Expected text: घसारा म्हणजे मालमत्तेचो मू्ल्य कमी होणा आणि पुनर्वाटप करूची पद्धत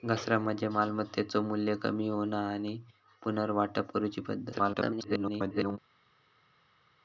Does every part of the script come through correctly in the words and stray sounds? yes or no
no